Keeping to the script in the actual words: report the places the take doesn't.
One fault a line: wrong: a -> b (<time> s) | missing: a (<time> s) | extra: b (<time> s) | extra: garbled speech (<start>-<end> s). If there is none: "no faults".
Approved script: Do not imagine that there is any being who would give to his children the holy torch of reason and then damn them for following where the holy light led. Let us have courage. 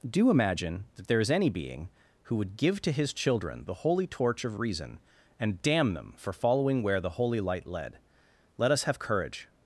missing: not (0.3 s)
missing: then (5.6 s)